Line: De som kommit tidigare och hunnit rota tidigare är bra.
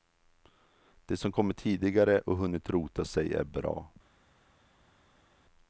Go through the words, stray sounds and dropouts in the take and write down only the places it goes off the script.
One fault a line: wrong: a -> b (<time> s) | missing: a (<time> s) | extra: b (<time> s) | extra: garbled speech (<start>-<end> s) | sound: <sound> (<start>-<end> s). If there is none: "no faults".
wrong: tidigare -> sig (3.0 s)